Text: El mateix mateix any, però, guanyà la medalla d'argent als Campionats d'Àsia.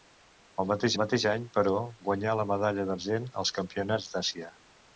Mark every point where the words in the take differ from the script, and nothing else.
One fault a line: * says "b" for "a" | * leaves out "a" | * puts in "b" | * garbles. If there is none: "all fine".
all fine